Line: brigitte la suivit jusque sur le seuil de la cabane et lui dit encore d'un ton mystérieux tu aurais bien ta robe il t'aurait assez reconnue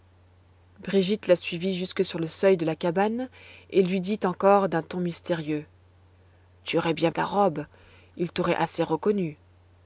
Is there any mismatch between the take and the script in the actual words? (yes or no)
no